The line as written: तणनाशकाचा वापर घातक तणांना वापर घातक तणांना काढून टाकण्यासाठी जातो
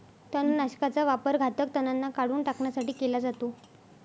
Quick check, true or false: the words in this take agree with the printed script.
false